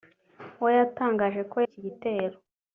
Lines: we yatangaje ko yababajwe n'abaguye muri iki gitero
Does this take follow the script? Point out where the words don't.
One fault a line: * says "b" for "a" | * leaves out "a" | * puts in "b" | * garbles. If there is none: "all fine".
* leaves out "yababajwe n'abaguye muri"